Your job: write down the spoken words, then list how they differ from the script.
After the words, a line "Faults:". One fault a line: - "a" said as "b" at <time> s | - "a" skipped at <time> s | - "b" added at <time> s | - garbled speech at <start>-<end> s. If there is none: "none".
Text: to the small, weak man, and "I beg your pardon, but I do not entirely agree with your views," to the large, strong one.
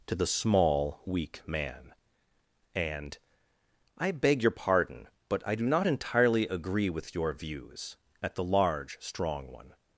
to the small, weak man, and "I beg your pardon, but I do not entirely agree with your views," at the large, strong one.
Faults:
- "to" said as "at" at 8.2 s